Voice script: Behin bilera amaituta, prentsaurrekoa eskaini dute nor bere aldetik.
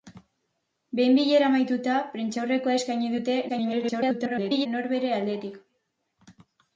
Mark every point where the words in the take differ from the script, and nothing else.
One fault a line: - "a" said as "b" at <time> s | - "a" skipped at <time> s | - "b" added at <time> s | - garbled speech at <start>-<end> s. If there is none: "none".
- garbled speech at 3.5-4.7 s